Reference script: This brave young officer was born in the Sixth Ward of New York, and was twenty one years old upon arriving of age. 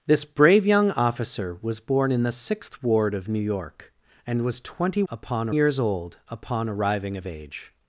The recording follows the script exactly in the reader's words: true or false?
false